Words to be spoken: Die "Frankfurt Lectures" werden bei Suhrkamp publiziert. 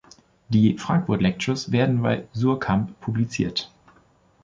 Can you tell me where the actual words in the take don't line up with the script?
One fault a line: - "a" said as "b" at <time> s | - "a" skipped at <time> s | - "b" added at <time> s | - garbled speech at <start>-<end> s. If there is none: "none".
none